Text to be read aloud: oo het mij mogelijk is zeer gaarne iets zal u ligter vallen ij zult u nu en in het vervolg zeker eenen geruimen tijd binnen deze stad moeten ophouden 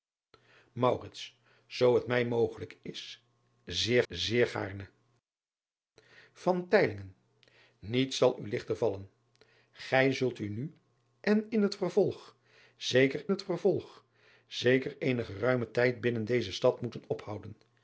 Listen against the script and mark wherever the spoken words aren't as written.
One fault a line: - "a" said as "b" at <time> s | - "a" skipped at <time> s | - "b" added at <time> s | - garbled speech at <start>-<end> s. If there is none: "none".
- "zeer" added at 4.1 s
- "het vervolg zeker" added at 13.3 s